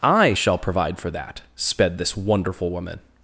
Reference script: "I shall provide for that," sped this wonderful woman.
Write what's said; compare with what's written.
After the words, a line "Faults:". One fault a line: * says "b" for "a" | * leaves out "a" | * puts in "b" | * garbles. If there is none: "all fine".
"I shall provide for that," sped this wonderful woman.
Faults:
all fine